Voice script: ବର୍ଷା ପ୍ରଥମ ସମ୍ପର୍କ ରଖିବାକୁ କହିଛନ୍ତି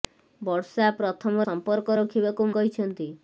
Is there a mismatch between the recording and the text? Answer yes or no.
no